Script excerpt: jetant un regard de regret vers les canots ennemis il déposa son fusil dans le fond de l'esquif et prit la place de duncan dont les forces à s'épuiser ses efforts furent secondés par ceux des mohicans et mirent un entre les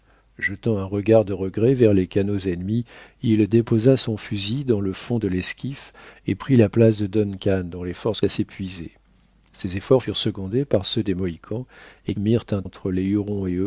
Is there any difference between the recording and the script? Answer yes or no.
no